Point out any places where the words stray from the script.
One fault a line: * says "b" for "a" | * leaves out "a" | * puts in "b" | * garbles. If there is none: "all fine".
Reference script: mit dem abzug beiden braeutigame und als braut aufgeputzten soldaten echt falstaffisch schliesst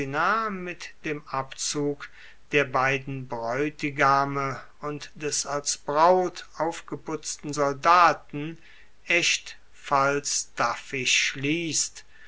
* puts in "der"
* puts in "des"